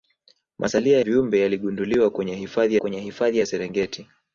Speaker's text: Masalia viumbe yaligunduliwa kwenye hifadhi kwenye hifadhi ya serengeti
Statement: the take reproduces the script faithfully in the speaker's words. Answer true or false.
true